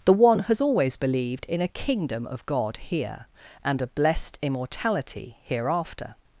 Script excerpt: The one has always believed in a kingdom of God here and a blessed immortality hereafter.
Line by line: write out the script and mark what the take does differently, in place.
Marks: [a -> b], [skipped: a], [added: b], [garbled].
The one has always believed in a kingdom of God here and a blessed immortality hereafter.